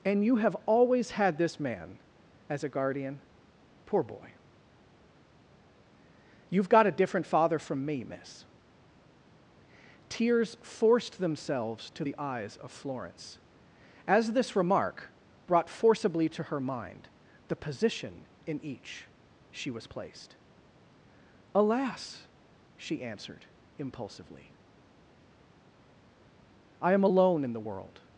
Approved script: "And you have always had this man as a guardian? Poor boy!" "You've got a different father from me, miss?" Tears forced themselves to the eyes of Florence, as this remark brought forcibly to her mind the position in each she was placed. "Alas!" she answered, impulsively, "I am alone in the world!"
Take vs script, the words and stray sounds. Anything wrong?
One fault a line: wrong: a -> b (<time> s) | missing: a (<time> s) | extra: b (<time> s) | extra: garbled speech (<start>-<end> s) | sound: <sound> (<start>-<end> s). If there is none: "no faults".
no faults